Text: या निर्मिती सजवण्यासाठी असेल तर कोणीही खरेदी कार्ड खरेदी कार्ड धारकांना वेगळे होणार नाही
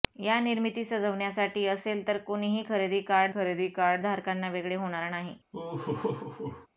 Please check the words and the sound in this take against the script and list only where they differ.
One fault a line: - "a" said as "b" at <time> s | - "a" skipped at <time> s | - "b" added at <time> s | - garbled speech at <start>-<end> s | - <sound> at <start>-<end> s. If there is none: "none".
- laugh at 5.5-6.7 s